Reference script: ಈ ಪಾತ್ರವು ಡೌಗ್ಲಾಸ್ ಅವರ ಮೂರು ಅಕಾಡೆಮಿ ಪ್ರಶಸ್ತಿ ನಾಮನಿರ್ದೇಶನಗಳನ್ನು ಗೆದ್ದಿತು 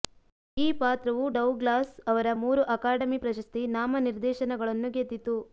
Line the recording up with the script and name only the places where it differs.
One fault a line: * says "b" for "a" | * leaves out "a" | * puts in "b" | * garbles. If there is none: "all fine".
all fine